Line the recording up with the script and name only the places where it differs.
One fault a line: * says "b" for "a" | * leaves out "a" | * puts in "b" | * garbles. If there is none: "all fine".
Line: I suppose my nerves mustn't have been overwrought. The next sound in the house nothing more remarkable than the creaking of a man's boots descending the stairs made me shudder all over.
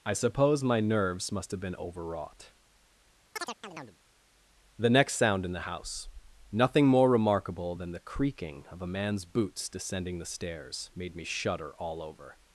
* says "must" for "mustn't"